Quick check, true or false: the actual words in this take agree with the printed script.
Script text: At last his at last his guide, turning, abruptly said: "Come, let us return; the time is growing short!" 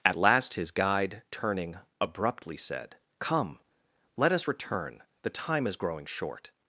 false